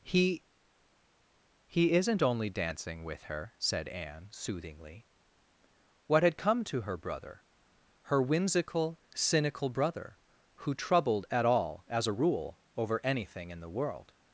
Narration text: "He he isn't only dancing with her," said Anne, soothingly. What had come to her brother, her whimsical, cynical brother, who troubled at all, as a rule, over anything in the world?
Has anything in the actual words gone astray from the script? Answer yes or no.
no